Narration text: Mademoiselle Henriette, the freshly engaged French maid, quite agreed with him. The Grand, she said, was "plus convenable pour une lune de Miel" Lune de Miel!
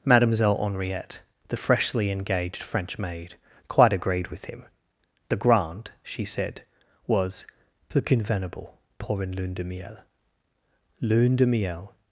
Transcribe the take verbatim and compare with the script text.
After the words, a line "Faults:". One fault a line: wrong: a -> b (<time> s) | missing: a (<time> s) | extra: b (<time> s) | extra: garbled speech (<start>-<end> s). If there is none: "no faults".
Mademoiselle Henriette, the freshly engaged French maid, quite agreed with him. The Grand, she said, was "plus convenable pour une lune de Miel" Lune de Miel!
Faults:
no faults